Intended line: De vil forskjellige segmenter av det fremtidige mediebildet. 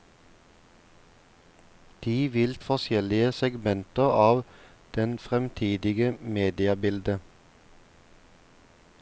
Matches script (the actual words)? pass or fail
pass